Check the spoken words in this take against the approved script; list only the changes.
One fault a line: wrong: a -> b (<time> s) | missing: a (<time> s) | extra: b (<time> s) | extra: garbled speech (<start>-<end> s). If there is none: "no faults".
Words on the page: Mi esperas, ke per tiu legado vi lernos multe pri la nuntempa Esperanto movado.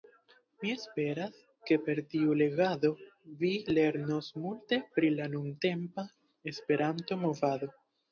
no faults